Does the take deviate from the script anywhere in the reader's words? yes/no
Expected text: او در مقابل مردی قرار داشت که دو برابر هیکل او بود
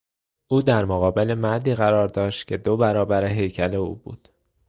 no